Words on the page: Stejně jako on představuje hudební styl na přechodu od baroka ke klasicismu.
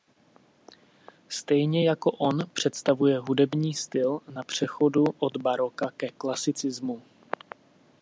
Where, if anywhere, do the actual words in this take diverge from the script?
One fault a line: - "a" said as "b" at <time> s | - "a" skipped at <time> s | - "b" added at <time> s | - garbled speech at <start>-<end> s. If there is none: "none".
none